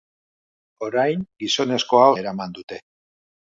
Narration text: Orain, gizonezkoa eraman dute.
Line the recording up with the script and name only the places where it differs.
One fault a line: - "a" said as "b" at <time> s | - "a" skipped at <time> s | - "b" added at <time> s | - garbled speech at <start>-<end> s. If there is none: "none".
none